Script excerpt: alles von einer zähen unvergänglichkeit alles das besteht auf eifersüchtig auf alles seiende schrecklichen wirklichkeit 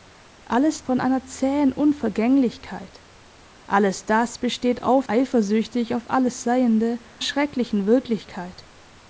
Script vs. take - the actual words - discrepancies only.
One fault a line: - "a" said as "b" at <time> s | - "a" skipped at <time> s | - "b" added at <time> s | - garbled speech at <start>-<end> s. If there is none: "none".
none